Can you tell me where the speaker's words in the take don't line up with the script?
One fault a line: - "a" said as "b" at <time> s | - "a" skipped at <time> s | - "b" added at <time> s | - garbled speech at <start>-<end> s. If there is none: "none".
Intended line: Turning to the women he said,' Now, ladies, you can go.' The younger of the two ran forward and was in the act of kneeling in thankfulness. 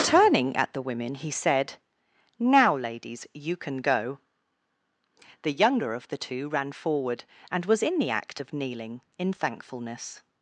- "to" said as "at" at 0.6 s